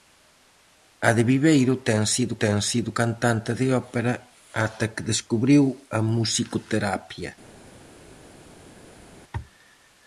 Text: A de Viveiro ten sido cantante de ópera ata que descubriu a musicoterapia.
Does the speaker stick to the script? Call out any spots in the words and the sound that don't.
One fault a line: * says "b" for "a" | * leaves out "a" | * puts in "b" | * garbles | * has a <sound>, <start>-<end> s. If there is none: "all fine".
* puts in "ten sido"